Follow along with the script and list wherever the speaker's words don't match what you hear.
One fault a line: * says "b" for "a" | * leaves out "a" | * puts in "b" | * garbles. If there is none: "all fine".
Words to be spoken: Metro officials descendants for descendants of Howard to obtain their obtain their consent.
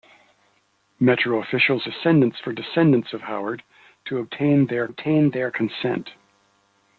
all fine